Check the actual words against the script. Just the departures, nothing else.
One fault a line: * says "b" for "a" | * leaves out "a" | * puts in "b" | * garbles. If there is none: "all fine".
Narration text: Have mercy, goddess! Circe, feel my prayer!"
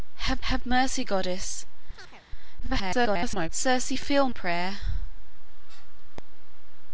* puts in "have"
* garbles
* leaves out "my"